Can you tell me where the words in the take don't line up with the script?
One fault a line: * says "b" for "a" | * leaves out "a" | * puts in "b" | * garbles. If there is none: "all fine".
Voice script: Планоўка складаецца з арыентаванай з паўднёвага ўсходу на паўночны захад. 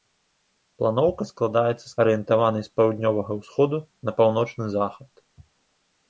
all fine